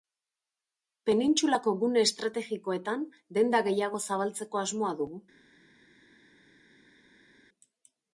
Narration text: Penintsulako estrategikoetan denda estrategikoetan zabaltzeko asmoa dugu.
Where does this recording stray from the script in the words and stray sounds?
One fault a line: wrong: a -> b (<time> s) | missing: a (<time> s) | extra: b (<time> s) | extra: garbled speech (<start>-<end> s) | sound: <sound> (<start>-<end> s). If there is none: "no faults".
extra: gune (1.8 s)
wrong: estrategikoetan -> gehiago (3.7 s)